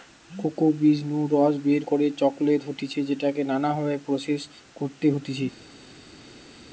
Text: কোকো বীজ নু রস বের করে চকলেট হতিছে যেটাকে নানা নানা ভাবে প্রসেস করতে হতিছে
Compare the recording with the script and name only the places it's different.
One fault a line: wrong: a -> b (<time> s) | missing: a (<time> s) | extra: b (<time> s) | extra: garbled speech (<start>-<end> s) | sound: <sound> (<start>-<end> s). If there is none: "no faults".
missing: নানা (3.7 s)